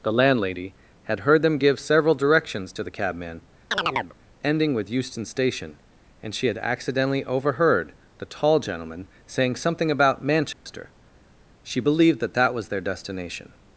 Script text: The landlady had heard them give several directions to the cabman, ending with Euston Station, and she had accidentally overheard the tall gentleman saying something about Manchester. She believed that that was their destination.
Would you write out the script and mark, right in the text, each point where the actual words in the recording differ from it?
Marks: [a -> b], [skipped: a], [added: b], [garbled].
The landlady had heard them give several directions to the cabman, ending with Euston Station, and she had accidentally overheard the tall gentleman saying something about Manchester. She believed that that was their destination.